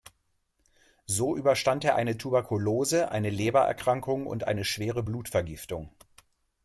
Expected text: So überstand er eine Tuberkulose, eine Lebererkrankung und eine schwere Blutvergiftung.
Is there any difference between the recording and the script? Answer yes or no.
no